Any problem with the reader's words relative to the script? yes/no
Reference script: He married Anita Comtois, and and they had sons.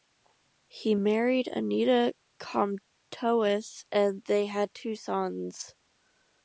yes